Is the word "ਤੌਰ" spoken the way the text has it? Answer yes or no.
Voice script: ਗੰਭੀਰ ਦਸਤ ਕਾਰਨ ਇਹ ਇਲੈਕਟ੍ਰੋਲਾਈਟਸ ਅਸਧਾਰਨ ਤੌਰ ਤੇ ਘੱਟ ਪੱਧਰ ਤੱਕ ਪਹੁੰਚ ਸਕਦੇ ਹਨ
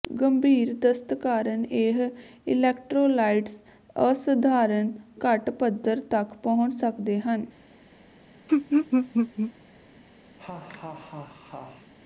no